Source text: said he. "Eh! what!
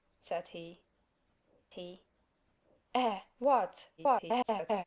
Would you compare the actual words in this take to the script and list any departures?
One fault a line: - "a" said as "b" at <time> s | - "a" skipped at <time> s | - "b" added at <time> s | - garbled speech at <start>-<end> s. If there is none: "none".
- "he" added at 1.7 s
- garbled speech at 4.0-4.8 s